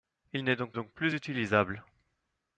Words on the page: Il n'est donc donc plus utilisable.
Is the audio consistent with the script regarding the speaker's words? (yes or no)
yes